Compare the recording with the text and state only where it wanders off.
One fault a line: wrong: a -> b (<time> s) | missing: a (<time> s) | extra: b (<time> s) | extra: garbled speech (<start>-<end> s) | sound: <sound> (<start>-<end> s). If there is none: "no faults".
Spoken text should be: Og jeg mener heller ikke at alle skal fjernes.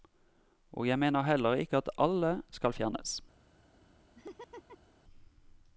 sound: laugh (4.1-4.9 s)